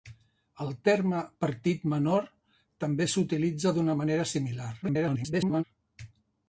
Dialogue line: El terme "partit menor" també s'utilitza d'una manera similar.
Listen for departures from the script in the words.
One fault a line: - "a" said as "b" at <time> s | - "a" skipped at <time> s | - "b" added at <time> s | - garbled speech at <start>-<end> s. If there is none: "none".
- garbled speech at 4.8-5.6 s